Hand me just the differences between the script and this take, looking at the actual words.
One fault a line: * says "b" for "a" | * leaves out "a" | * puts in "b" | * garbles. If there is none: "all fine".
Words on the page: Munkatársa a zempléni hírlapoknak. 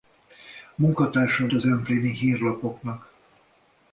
all fine